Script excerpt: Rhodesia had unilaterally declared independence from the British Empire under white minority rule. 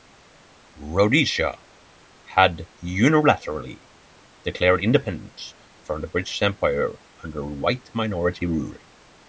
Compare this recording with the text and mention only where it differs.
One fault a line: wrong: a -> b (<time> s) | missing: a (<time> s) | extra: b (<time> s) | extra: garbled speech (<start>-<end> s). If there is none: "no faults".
no faults